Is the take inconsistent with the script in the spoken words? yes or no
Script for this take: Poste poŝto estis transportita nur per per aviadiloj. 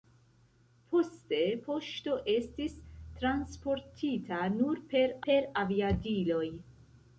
no